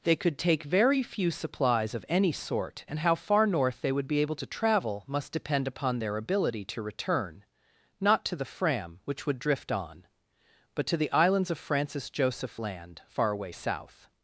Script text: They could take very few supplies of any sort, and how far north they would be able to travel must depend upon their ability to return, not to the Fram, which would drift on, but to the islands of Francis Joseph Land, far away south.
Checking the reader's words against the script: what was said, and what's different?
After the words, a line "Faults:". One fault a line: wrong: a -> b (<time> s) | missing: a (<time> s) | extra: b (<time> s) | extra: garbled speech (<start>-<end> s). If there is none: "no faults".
They could take very few supplies of any sort, and how far north they would be able to travel must depend upon their ability to return, not to the Fram, which would drift on, but to the islands of Francis Joseph Land, far away south.
Faults:
no faults